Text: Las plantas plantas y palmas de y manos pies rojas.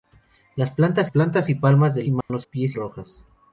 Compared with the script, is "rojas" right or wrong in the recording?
right